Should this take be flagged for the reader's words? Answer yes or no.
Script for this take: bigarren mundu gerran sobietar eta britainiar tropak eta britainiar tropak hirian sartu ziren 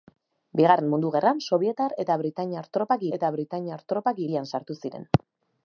no